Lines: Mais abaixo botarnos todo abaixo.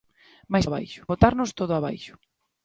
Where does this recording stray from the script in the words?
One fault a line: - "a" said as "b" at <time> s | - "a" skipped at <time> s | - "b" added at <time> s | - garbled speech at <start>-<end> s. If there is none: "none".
none